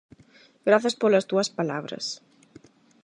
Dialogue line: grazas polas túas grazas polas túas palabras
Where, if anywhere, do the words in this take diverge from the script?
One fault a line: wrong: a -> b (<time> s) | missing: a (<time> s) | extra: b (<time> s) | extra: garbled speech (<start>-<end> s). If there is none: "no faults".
missing: grazas polas túas (1.5 s)